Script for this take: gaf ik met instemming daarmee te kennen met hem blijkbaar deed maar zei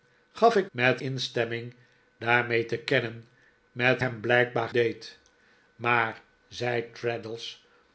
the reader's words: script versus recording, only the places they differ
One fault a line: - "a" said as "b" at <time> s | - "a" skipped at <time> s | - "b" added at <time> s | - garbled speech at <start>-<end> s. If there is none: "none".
none